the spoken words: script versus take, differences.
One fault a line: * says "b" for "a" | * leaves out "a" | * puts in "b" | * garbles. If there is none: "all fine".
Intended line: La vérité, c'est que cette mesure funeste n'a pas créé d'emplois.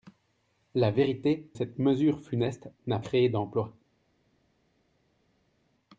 * leaves out "c'est que"
* leaves out "pas"